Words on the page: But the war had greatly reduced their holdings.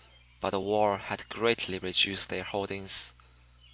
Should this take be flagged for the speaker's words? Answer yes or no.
no